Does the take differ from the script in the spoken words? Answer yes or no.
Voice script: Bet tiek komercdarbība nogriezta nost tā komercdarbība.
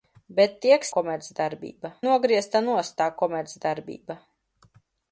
no